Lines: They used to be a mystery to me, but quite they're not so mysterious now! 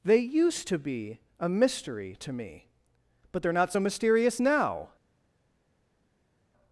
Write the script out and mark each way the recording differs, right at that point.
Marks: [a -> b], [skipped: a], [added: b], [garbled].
They used to be a mystery to me, but [skipped: quite] they're not so mysterious now!